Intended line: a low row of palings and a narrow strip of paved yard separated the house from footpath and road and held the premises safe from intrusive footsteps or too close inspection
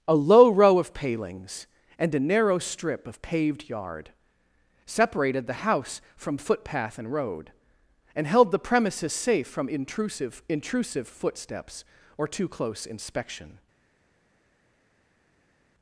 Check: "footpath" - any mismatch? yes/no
no